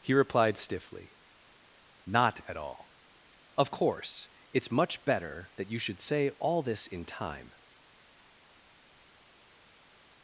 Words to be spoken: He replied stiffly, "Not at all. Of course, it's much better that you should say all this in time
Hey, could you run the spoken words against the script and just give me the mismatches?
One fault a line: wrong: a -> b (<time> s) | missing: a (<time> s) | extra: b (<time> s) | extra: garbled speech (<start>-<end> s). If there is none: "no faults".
no faults